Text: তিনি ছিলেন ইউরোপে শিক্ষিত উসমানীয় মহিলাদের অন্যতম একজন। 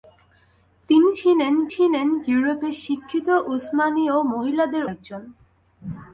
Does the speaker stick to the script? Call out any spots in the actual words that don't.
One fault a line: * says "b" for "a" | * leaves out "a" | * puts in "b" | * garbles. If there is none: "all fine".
* puts in "ছিলেন"
* leaves out "অন্যতম"